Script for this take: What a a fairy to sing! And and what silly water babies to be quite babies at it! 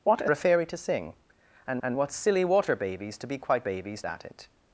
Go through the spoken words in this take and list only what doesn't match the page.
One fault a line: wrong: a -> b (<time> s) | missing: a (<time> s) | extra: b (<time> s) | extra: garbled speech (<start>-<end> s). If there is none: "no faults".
no faults